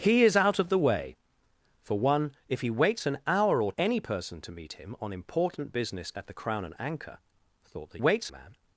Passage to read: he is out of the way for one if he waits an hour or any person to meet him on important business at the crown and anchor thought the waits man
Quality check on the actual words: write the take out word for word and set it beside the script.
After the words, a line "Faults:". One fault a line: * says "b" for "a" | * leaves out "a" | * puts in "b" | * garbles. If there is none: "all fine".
he is out of the way for one if he waits an hour or any person to meet him on important business at the crown and anchor thought the waits man
Faults:
all fine